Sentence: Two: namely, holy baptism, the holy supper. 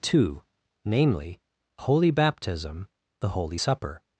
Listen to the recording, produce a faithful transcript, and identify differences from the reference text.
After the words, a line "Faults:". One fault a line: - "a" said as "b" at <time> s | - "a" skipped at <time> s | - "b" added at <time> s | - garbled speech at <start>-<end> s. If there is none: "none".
Two: namely, holy baptism, the holy supper.
Faults:
none